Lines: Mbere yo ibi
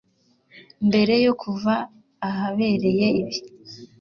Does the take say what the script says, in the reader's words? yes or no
no